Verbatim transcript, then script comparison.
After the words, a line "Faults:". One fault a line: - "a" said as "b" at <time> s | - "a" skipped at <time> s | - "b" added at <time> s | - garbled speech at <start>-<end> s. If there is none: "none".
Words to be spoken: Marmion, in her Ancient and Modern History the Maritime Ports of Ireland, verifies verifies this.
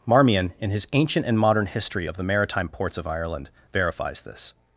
Marmion, in his Ancient and Modern History of the Maritime Ports of Ireland, verifies this.
Faults:
- "her" said as "his" at 0.7 s
- "of" added at 2.1 s
- "verifies" skipped at 4.2 s